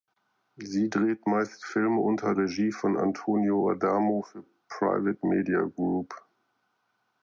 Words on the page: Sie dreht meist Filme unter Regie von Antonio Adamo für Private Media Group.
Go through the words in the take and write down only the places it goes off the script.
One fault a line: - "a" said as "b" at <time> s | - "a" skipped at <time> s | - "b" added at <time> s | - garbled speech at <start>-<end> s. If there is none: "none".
none